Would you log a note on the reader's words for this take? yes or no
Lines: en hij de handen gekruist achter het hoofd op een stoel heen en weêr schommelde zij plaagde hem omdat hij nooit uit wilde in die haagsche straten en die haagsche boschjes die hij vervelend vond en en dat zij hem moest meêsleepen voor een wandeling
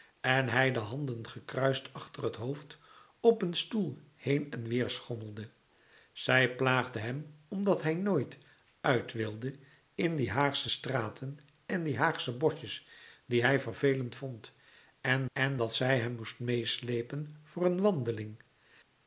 no